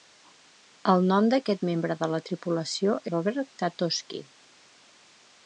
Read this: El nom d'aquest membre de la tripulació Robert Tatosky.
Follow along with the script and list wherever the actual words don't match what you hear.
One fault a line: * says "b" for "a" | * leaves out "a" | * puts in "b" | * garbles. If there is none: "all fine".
all fine